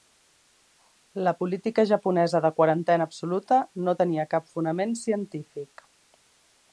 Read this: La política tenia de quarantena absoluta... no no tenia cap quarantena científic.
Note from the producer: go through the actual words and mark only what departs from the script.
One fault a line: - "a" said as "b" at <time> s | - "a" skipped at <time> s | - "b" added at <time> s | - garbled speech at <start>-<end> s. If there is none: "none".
- "tenia" said as "japonesa" at 1.9 s
- "no" skipped at 4.0 s
- "quarantena" said as "fonament" at 4.6 s